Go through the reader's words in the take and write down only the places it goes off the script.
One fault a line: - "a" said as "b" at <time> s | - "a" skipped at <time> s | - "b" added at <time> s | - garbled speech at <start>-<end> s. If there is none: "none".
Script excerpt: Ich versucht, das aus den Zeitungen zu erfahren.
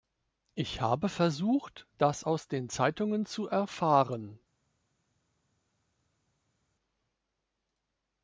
- "habe" added at 0.8 s